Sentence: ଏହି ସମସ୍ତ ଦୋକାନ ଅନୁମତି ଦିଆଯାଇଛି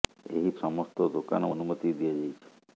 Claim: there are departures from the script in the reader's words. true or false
false